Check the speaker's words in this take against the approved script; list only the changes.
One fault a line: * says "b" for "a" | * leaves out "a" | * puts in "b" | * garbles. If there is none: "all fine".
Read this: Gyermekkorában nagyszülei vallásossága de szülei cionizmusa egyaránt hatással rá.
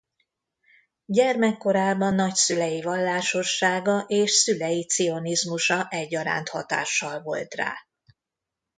* says "és" for "de"
* puts in "volt"